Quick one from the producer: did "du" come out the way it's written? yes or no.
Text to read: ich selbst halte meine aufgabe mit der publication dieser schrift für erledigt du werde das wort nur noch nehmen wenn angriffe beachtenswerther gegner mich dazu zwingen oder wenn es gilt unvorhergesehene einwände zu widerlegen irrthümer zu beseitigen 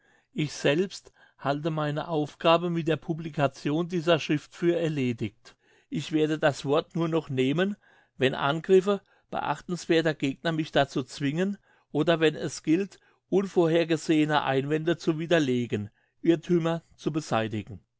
no